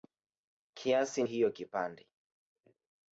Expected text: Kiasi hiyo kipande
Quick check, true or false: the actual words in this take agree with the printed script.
true